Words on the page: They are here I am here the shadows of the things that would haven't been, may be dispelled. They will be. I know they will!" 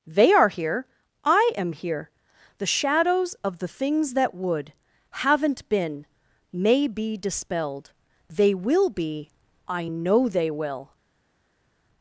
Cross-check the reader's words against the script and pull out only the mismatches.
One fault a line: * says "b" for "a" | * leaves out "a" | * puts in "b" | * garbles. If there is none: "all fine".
all fine